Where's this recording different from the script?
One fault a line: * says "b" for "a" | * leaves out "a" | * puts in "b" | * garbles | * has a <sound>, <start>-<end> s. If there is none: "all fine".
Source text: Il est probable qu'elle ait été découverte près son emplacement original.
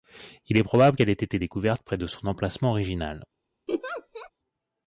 * puts in "de"
* has a laugh, 3.7-4.3 s